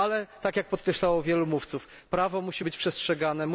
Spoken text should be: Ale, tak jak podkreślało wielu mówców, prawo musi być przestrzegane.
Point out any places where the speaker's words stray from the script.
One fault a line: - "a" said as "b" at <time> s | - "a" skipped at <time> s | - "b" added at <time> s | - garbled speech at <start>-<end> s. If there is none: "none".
none